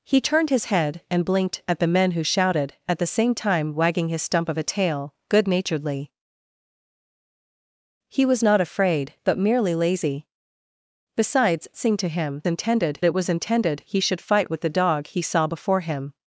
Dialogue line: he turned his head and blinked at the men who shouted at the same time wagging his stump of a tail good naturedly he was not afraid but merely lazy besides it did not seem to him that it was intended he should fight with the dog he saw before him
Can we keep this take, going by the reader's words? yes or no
no